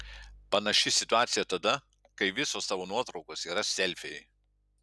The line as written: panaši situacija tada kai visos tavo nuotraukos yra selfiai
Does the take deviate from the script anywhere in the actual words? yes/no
no